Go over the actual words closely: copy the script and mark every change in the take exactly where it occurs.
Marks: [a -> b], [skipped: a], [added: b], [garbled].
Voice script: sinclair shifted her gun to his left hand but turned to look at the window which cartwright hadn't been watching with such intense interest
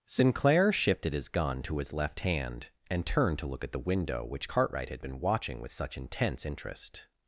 sinclair shifted [her -> his] gun to his left hand [but -> and] turned to look at the window which cartwright [hadn't -> had] been watching with such intense interest